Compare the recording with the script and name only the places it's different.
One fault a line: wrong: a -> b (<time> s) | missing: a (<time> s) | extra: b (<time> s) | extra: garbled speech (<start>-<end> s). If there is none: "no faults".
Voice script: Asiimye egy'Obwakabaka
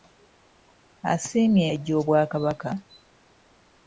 no faults